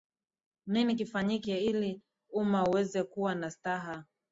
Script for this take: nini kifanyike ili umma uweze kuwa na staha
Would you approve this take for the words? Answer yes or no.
yes